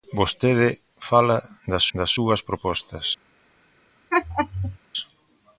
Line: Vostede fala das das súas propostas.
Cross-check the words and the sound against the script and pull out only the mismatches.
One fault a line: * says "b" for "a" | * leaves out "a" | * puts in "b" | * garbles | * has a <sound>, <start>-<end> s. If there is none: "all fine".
* has a laugh, 4.1-4.8 s